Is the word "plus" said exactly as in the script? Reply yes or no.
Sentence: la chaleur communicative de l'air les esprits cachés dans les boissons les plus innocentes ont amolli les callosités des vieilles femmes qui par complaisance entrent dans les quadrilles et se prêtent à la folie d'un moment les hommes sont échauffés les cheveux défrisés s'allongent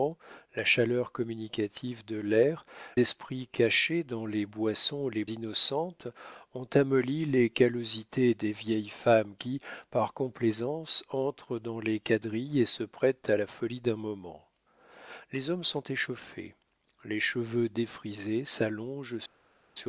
no